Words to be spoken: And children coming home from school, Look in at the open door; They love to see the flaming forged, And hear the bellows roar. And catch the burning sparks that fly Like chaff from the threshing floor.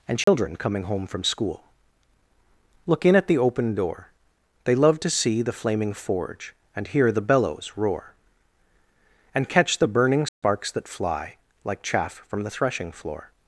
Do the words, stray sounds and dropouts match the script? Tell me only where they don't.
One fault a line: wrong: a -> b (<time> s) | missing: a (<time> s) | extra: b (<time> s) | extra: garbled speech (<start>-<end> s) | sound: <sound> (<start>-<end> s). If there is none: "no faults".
sound: dropout (0.2-0.3 s)
wrong: forged -> forge (5.9 s)
sound: dropout (10.3-10.4 s)